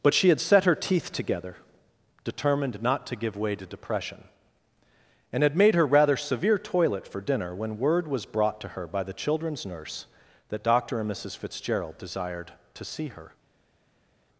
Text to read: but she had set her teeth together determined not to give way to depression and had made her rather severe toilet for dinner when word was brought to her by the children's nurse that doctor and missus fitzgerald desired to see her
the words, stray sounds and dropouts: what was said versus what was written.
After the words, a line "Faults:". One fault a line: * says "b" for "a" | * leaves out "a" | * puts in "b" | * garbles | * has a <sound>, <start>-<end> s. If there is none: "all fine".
but she had set her teeth together determined not to give way to depression and had made her rather severe toilet for dinner when word was brought to her by the children's nurse that doctor and missus fitzgerald desired to see her
Faults:
all fine